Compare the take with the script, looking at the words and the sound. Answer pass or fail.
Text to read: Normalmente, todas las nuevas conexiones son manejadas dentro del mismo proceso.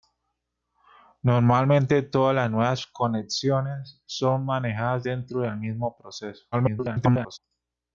fail